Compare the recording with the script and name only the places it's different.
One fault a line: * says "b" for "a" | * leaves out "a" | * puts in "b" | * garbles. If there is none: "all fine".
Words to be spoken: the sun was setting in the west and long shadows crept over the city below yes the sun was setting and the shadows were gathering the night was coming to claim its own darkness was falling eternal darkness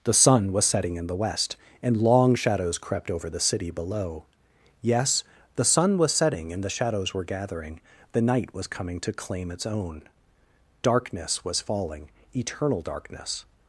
all fine